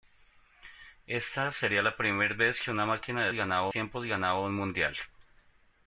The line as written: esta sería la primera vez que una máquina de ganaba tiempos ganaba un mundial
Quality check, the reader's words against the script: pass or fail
pass